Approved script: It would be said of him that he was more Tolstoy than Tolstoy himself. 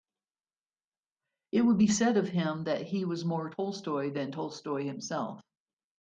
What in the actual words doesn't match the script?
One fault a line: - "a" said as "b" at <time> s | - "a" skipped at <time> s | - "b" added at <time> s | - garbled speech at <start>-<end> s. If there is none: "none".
none